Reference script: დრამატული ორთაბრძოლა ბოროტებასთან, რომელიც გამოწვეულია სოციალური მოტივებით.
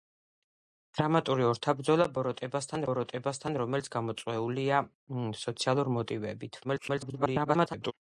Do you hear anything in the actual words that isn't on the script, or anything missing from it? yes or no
yes